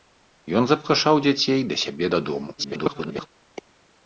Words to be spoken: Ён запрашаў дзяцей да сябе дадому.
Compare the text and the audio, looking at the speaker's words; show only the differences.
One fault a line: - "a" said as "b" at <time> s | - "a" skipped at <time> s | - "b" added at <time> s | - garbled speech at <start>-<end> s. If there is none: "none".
- garbled speech at 2.6-3.3 s